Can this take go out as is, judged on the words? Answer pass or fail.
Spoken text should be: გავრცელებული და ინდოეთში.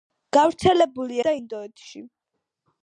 pass